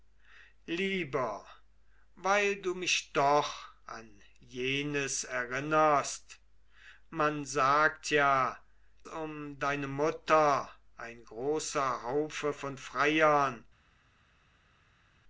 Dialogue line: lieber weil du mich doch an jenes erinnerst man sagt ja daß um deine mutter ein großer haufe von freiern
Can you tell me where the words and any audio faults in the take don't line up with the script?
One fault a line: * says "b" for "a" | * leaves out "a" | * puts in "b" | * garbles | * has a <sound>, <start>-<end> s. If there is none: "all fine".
* leaves out "daß"